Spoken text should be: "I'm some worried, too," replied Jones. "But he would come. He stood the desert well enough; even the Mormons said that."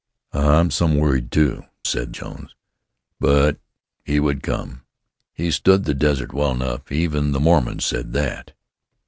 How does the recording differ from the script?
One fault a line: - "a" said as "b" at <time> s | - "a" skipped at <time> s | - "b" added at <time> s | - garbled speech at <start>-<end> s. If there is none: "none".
- "replied" said as "said" at 1.9 s